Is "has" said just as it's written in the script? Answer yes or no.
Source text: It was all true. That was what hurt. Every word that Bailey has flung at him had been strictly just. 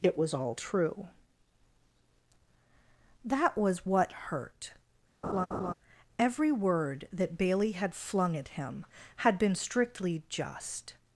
no